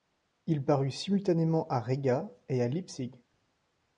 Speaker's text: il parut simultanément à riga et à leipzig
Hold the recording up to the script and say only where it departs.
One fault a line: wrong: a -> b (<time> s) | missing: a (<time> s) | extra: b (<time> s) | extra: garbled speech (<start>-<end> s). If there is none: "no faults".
no faults